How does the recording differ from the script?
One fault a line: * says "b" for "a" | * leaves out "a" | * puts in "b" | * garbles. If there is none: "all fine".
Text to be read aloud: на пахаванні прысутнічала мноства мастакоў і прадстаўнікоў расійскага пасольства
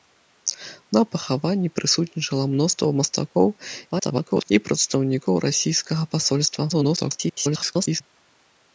* garbles
* garbles